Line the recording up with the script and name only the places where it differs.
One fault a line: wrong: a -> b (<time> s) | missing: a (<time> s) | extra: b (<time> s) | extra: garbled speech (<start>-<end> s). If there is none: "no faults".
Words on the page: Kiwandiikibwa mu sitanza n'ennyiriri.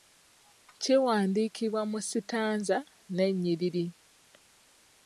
no faults